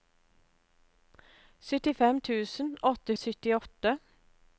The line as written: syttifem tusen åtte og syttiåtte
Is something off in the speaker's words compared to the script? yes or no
no